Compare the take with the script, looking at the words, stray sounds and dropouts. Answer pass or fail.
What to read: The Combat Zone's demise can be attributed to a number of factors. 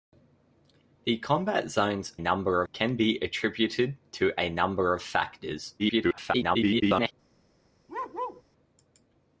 fail